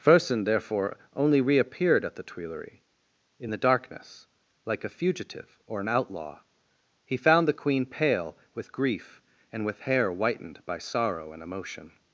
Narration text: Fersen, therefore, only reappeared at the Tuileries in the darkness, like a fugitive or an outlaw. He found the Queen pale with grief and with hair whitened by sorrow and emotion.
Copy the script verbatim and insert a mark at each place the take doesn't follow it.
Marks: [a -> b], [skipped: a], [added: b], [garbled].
Fersen, therefore, only reappeared at the Tuileries in the darkness, like a fugitive or an outlaw. He found the Queen pale with grief and with hair whitened by sorrow and emotion.